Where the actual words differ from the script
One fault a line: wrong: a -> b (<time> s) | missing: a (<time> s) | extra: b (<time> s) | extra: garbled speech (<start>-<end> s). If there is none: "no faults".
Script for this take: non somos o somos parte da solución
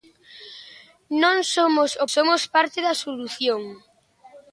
no faults